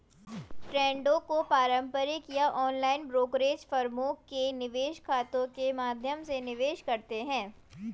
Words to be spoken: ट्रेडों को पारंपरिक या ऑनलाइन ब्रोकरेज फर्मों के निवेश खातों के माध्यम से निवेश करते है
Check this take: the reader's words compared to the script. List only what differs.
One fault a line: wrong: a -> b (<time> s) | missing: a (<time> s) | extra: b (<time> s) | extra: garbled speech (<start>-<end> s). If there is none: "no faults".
no faults